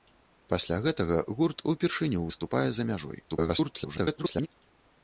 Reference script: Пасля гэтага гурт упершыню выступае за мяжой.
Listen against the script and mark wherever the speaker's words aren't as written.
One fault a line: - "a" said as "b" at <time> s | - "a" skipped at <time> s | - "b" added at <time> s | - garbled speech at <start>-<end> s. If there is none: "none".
- garbled speech at 3.3-4.5 s